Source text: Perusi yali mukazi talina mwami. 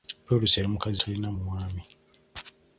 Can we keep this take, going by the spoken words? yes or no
yes